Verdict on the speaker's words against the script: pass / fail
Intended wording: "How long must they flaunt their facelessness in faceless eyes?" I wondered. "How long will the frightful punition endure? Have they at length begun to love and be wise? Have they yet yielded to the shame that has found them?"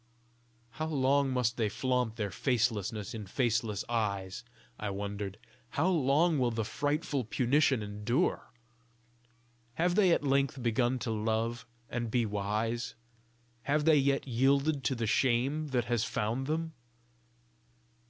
pass